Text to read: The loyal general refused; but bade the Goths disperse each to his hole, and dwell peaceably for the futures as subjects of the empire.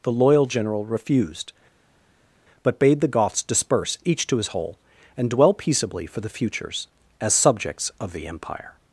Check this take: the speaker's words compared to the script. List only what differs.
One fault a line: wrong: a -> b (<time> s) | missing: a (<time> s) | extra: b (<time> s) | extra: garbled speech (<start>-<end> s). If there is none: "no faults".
no faults